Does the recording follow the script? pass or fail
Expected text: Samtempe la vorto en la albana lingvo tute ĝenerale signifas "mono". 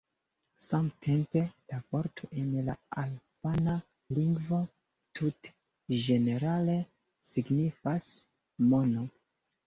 pass